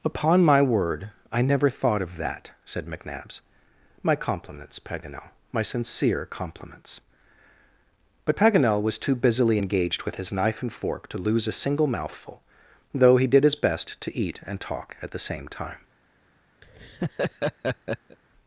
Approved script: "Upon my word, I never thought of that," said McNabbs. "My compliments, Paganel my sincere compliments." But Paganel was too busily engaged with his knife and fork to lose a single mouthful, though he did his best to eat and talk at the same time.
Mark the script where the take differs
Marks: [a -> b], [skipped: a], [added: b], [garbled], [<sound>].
"Upon my word, I never thought of that," said McNabbs. "My compliments, Paganel my sincere compliments." But Paganel was too busily engaged with his knife and fork to lose a single mouthful, though he did his best to eat and talk at the same time. [laugh]